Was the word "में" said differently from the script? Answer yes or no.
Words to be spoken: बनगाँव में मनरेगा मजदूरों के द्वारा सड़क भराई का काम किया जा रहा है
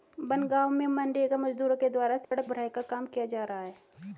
no